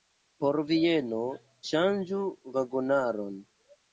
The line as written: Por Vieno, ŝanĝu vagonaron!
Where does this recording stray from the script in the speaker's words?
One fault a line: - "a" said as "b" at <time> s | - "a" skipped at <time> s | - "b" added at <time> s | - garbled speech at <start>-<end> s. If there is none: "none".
none